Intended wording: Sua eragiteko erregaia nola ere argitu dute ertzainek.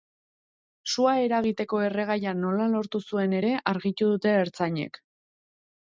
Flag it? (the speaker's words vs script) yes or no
yes